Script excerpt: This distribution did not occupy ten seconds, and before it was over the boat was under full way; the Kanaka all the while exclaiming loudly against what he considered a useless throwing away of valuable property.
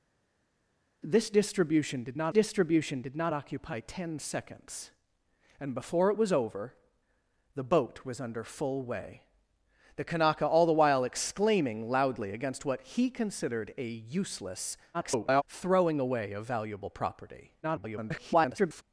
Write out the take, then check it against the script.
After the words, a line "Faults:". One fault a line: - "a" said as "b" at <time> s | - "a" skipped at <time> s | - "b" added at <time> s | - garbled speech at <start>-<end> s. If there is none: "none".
This distribution did not distribution did not occupy ten seconds, and before it was over the boat was under full way; the Kanaka all the while exclaiming loudly against what he considered a useless [garbled] throwing away of valuable property. [garbled]
Faults:
- "distribution did not" added at 2.3 s
- garbled speech at 14.9-15.4 s
- garbled speech at 17.6-18.8 s